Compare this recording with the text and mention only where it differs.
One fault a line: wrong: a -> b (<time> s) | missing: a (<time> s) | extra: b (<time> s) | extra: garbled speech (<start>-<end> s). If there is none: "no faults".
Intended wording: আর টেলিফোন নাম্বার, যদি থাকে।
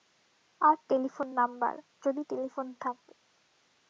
extra: টেলিফোন (2.3 s)